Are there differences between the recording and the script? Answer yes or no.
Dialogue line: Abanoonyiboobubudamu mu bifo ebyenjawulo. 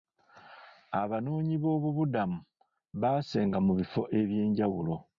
yes